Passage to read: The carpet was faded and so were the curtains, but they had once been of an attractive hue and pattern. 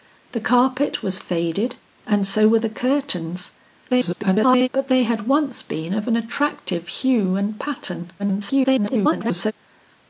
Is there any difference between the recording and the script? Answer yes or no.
yes